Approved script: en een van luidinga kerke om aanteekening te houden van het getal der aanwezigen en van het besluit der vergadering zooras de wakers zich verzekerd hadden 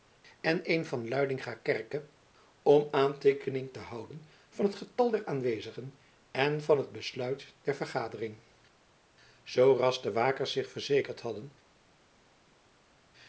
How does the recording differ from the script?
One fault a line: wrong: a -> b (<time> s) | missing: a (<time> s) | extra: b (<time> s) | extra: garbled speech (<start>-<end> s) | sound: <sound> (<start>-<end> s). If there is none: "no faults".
no faults